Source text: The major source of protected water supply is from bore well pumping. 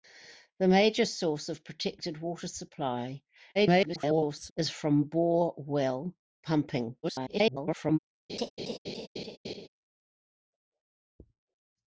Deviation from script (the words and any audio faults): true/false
true